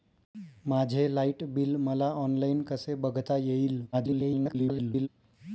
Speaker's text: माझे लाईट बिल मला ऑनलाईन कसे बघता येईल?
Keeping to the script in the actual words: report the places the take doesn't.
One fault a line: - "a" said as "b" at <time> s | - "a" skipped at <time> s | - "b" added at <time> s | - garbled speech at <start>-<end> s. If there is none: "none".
- garbled speech at 3.9-5.1 s